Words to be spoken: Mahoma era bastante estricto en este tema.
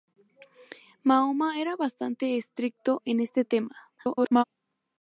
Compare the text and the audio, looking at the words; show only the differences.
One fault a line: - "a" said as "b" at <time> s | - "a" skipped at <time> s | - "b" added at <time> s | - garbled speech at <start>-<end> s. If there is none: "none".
- garbled speech at 4.0-4.4 s